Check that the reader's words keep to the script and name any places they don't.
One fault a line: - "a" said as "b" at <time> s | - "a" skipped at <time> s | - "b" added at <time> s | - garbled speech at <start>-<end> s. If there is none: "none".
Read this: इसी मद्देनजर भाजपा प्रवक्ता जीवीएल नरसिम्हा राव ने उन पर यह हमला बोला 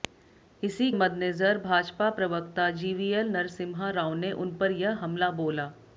none